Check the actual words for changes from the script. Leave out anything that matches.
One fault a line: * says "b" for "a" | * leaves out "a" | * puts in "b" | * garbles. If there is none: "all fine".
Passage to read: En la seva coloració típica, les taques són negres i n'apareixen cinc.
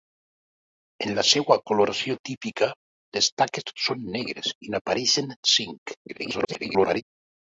* garbles